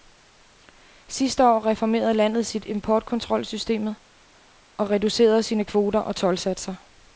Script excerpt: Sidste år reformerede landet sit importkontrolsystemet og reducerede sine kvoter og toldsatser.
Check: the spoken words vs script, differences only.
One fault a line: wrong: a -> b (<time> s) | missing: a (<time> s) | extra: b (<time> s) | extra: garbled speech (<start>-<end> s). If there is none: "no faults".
no faults